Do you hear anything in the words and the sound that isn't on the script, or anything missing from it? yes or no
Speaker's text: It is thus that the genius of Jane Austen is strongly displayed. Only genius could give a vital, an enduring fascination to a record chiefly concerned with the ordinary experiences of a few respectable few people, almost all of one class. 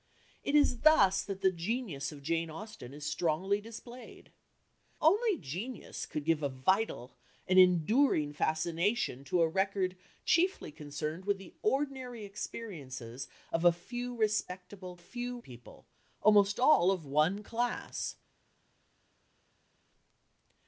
no